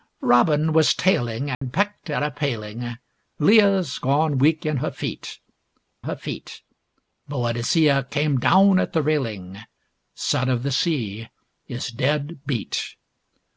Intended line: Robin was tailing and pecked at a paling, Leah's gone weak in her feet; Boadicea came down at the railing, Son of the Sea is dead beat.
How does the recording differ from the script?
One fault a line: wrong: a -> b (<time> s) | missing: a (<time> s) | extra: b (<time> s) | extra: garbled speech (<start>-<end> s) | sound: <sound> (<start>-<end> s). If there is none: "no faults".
sound: dropout (1.5-1.6 s)
extra: her feet (6.0 s)